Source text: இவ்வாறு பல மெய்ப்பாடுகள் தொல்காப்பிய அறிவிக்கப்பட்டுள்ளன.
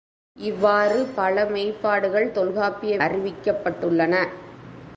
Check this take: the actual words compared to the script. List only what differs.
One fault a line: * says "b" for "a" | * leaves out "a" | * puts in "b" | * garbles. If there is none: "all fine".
all fine